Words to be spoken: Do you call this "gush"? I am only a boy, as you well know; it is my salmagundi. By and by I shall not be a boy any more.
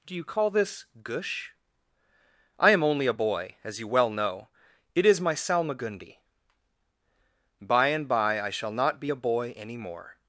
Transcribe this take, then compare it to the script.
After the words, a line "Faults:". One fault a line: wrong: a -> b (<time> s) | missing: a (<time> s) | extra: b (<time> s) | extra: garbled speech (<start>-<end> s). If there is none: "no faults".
Do you call this "gush"? I am only a boy, as you well know; it is my salmagundi. By and by I shall not be a boy any more.
Faults:
no faults